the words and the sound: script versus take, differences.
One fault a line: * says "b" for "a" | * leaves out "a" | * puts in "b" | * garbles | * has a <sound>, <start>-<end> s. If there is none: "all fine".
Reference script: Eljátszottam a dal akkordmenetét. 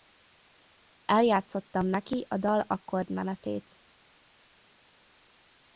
* puts in "neki"